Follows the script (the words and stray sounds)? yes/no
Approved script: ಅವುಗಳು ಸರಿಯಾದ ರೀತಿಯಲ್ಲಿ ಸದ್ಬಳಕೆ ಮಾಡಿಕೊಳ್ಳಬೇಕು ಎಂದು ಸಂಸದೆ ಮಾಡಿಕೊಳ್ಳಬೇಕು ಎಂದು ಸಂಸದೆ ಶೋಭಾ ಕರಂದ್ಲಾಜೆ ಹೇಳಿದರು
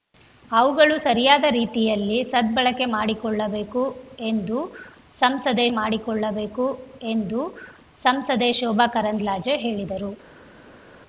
yes